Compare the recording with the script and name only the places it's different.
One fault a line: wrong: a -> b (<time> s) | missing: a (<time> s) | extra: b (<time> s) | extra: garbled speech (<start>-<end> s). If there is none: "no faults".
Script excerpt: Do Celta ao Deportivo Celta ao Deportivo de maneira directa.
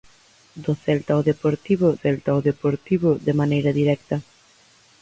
no faults